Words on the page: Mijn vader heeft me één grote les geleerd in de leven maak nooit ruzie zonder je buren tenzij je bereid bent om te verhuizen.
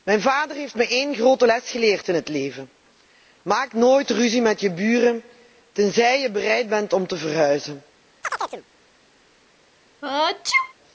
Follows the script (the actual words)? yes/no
no